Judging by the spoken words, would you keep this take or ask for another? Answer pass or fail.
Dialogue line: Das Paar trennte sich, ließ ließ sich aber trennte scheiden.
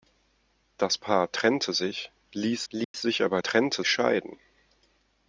pass